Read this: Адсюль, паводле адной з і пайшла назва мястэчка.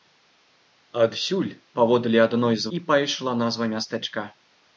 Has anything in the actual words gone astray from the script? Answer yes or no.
no